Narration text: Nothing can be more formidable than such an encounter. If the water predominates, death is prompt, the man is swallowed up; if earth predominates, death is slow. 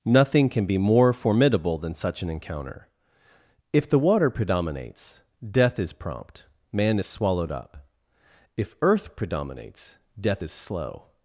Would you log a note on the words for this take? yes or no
yes